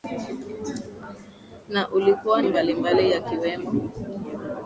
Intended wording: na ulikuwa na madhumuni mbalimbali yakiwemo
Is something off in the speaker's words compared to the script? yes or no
yes